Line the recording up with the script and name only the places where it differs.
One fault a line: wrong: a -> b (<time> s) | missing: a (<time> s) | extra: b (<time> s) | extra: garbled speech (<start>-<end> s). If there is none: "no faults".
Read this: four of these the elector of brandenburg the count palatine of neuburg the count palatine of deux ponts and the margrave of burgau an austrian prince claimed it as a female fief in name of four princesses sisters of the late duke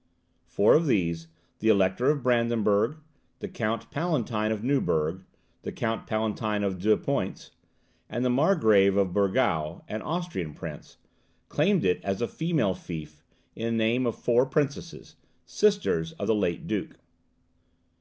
no faults